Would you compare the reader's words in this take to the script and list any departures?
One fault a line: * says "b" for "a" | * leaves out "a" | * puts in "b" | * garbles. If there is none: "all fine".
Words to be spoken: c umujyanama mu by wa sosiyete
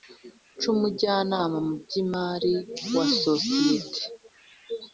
* puts in "imari"